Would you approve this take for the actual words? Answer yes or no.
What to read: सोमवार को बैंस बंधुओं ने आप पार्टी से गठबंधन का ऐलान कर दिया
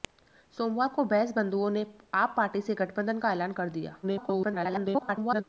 no